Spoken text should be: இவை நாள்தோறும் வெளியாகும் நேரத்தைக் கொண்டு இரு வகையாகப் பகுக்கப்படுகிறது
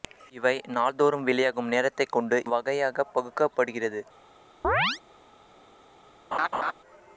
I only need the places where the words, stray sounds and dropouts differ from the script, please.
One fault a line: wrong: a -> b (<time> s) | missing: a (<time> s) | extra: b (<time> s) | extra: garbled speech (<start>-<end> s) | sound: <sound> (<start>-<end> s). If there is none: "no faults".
missing: இரு (2.4 s)
sound: chirp (4.6-5.0 s)
sound: laugh (6.3-6.7 s)